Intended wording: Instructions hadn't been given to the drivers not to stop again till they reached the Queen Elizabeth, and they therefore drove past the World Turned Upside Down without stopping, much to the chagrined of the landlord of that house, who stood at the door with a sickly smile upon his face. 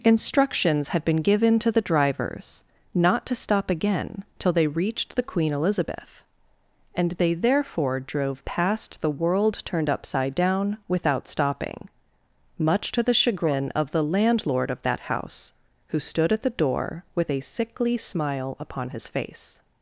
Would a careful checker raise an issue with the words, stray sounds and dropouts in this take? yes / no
yes